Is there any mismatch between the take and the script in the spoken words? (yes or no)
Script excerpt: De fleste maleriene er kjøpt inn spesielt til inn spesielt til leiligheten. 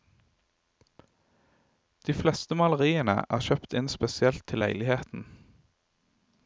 yes